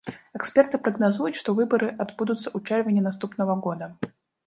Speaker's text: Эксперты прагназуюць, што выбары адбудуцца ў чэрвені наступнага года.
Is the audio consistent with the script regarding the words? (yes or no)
yes